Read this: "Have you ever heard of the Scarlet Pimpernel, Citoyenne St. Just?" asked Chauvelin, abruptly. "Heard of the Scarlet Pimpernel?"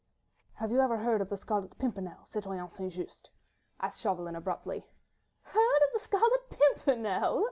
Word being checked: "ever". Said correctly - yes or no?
yes